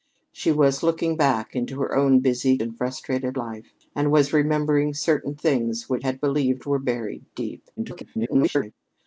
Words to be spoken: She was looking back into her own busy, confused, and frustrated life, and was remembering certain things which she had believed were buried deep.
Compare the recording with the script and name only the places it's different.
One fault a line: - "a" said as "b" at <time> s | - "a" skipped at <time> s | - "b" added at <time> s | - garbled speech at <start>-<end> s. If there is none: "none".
- "confused" skipped at 2.6 s
- "she" skipped at 6.0 s
- garbled speech at 7.8-8.7 s